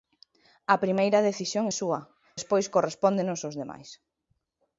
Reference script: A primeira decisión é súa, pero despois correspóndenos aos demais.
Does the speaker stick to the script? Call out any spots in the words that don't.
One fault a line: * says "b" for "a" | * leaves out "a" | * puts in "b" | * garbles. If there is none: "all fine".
* leaves out "pero"